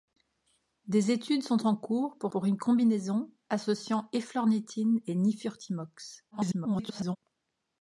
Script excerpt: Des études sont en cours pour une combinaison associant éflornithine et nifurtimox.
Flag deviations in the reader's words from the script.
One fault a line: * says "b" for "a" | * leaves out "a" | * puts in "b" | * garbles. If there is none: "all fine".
* puts in "pour"
* garbles